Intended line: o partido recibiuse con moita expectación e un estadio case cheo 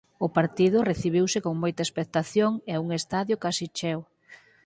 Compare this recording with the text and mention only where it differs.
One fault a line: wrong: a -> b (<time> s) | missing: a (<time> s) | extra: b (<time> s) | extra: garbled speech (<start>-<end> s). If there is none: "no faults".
no faults